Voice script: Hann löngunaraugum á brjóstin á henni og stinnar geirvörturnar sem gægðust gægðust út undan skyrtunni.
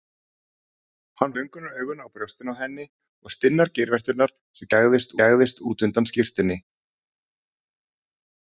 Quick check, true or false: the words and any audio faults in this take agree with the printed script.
true